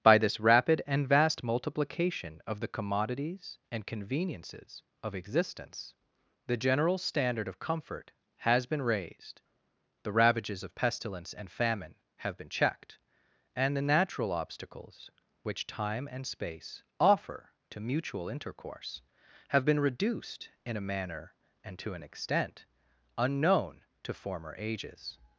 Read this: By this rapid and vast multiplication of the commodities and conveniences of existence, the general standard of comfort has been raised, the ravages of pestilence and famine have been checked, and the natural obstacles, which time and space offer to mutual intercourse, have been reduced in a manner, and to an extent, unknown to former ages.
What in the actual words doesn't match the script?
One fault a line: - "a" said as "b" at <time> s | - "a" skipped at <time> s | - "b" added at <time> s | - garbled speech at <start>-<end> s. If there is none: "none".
none